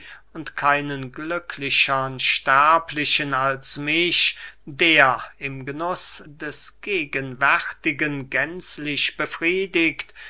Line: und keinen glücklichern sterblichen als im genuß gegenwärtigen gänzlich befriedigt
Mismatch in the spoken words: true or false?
true